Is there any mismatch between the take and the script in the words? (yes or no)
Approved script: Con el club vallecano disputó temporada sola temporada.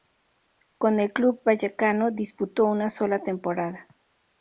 yes